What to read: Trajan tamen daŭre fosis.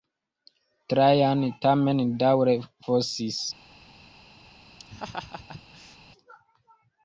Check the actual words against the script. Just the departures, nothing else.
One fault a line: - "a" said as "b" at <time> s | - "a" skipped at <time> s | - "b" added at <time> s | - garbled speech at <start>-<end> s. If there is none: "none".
none